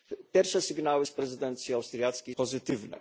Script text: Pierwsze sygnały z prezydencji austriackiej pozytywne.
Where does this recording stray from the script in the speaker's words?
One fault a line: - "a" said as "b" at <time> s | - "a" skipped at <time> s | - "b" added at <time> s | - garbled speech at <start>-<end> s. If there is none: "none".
none